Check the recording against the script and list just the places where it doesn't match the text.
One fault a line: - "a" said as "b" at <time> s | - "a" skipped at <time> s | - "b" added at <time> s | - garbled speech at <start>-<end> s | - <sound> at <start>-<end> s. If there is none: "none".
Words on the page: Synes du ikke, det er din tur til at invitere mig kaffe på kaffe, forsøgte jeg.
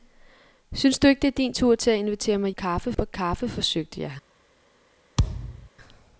- thud at 5.2-5.7 s